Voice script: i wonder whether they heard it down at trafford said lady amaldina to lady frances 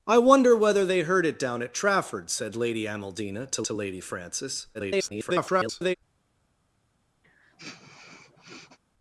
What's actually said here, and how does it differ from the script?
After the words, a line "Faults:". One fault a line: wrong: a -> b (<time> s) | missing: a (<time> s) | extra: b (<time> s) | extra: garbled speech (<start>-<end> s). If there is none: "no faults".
i wonder whether they heard it down at trafford said lady amaldina to to lady frances [garbled]
Faults:
extra: to (3.6 s)
extra: garbled speech (4.7-6.0 s)